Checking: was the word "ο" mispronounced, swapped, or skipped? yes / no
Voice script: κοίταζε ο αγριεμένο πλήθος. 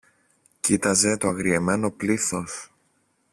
yes